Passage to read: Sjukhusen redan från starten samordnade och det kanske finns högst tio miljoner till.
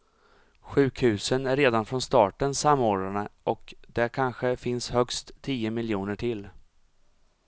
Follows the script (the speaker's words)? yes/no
no